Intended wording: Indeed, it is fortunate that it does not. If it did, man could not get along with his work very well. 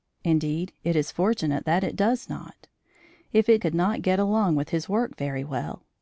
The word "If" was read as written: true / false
true